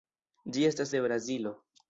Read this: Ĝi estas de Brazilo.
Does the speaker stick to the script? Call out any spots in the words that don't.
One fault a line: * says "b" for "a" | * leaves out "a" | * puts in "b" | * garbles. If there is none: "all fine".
all fine